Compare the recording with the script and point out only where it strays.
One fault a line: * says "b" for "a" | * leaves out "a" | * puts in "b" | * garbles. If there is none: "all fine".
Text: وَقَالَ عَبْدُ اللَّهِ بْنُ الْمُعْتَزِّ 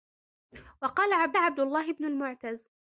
* puts in "عَبْدُ"